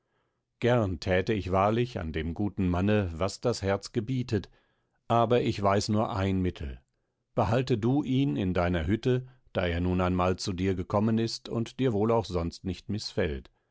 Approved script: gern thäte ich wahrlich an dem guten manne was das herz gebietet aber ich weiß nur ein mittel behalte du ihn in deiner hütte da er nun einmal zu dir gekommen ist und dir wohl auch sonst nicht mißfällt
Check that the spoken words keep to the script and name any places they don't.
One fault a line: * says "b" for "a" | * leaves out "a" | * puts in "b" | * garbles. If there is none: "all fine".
all fine